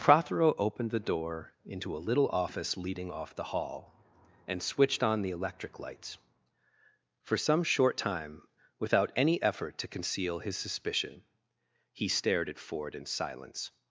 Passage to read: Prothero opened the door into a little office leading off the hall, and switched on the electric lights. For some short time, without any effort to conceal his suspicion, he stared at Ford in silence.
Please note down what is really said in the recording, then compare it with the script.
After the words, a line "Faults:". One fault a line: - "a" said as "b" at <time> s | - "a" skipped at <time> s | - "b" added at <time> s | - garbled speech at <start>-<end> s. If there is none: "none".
Prothero opened the door into a little office leading off the hall, and switched on the electric lights. For some short time, without any effort to conceal his suspicion, he stared at Ford in silence.
Faults:
none